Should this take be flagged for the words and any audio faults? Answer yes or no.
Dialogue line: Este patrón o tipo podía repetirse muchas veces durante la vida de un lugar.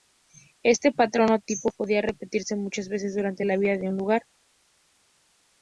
no